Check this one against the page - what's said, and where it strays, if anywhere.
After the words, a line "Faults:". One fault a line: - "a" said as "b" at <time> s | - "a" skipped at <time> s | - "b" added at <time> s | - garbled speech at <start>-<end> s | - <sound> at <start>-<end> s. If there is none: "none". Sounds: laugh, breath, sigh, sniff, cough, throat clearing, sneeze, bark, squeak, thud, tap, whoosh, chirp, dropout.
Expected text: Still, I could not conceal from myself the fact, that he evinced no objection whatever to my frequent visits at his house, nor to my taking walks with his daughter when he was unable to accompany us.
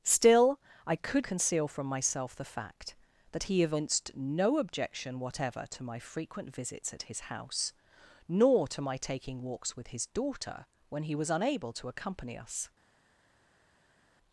Still, I could conceal from myself the fact, that he evinced no objection whatever to my frequent visits at his house, nor to my taking walks with his daughter when he was unable to accompany us.
Faults:
- "not" skipped at 1.3 s